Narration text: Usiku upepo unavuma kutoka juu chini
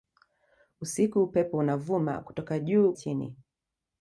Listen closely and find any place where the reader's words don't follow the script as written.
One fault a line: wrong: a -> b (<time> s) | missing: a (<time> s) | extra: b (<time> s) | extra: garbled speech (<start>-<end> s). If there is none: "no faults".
no faults